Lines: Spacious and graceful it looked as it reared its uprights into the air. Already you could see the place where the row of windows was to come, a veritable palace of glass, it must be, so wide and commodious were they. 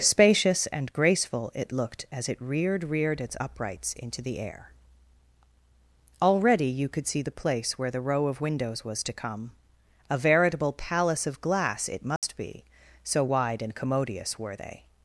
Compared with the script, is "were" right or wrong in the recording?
right